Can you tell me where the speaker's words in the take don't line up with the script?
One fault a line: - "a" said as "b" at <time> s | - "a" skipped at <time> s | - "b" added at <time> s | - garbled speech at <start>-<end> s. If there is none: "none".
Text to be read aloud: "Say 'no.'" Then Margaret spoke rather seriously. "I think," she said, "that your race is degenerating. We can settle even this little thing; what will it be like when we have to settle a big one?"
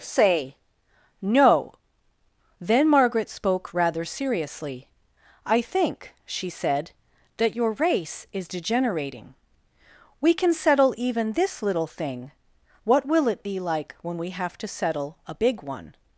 none